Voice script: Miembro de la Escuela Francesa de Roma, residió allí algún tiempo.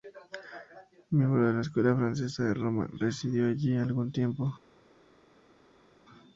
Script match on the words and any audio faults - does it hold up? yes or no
yes